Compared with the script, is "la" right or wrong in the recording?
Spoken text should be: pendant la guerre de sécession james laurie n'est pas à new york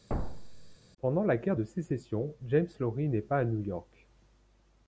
right